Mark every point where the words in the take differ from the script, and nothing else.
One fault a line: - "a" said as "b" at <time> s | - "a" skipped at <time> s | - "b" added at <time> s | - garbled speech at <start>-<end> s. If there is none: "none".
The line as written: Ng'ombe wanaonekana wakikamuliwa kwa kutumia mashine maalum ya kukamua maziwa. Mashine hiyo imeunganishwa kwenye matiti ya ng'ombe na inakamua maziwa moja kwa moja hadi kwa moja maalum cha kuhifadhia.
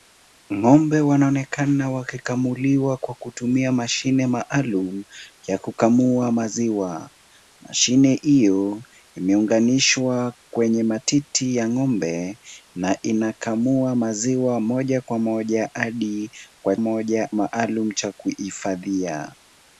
none